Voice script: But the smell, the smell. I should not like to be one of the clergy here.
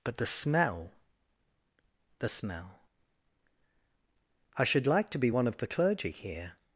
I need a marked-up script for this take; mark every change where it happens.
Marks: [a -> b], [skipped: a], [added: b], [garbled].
But the smell, the smell. I should [skipped: not] like to be one of the clergy here.